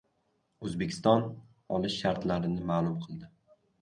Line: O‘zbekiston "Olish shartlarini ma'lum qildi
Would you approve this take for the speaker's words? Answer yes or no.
yes